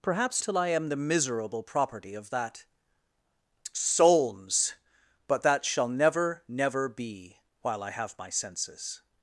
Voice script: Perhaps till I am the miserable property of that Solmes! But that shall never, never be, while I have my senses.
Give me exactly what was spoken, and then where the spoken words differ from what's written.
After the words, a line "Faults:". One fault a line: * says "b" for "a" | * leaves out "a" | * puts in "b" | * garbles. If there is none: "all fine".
Perhaps till I am the miserable property of that Solmes! But that shall never, never be, while I have my senses.
Faults:
all fine